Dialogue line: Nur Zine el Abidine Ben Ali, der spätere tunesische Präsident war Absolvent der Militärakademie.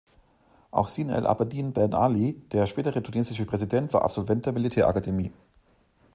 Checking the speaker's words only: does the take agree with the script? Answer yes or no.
no